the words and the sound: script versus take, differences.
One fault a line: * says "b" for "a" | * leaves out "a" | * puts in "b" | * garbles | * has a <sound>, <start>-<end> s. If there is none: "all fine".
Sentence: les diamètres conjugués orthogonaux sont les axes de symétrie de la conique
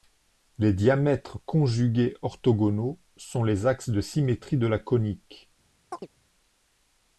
* has a chirp, 5.9-6.1 s